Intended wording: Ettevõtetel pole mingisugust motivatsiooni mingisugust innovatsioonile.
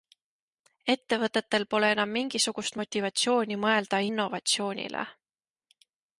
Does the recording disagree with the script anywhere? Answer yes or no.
yes